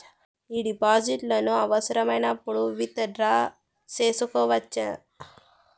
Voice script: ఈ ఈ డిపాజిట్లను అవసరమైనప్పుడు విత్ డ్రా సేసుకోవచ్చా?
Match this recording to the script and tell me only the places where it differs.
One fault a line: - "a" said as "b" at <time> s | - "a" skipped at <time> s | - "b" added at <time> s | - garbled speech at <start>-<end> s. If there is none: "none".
- "ఈ" skipped at 0.6 s